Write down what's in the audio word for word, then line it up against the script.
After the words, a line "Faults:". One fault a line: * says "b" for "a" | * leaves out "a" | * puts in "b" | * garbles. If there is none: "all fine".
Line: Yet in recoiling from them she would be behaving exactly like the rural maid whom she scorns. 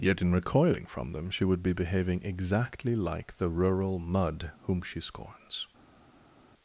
Yet in recoiling from them she would be behaving exactly like the rural mud whom she scorns.
Faults:
* says "mud" for "maid"